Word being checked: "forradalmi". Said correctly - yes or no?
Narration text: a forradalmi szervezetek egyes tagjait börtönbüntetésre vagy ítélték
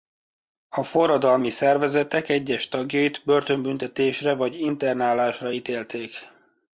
yes